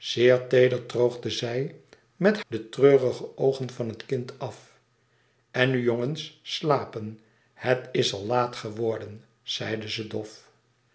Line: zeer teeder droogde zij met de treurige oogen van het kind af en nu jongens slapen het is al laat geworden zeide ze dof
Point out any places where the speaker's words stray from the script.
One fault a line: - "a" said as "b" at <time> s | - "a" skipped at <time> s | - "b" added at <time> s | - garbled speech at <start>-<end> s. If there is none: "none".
none